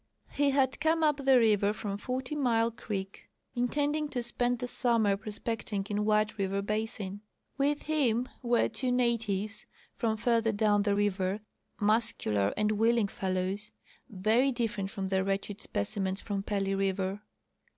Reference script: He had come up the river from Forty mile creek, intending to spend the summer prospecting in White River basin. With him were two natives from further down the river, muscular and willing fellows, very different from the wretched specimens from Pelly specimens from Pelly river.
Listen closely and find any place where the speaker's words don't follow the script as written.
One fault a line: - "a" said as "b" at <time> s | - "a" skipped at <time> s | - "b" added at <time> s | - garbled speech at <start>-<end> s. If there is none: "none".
- "specimens from Pelly" skipped at 16.8 s